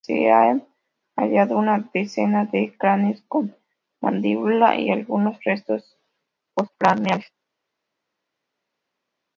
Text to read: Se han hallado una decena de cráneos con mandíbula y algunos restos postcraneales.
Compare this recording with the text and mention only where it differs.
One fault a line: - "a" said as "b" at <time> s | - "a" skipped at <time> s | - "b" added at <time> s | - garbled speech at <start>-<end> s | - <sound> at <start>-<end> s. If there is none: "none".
none